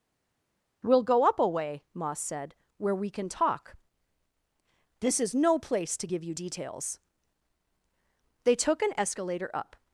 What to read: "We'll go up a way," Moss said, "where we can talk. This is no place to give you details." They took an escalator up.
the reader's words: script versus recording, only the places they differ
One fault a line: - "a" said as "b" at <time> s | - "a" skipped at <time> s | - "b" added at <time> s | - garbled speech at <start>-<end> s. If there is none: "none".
none